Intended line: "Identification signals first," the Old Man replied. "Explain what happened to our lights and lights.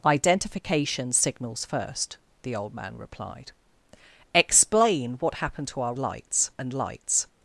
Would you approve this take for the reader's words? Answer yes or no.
yes